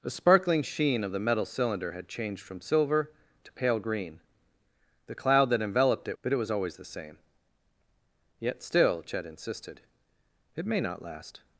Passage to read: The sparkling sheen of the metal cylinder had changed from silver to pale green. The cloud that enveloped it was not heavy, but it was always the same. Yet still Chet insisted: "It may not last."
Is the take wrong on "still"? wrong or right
right